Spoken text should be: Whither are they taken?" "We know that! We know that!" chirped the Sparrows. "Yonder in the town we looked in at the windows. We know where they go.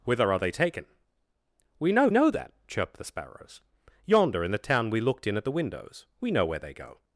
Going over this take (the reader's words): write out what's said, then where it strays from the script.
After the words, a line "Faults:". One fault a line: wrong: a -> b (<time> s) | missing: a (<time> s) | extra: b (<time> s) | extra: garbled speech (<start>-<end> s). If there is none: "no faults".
Whither are they taken?" "We know know that!" chirped the Sparrows. "Yonder in the town we looked in at the windows. We know where they go.
Faults:
missing: that We (2.1 s)